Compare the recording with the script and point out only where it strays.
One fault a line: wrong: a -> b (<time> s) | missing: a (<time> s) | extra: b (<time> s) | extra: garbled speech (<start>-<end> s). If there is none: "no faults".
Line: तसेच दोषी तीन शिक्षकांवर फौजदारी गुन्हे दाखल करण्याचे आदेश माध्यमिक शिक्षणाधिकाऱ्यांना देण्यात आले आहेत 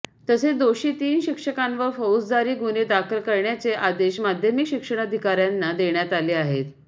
no faults